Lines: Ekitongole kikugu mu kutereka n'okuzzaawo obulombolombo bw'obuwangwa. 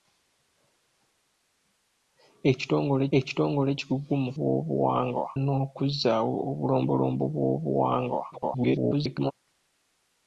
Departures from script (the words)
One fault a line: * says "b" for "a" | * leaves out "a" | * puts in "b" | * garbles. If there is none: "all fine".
* puts in "ekitongole"
* says "bw'obuwangwa" for "kutereka"
* garbles